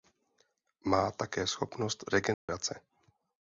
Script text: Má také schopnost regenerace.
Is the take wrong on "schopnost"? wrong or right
right